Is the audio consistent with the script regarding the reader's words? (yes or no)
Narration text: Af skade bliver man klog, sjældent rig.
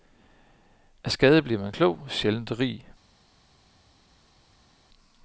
yes